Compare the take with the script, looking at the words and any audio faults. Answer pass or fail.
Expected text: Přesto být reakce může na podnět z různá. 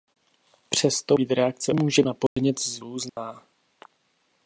fail